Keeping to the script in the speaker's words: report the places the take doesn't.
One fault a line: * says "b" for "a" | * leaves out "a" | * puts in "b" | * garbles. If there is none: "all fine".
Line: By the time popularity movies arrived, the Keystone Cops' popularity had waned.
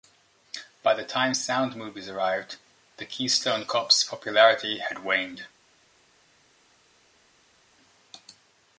* says "sound" for "popularity"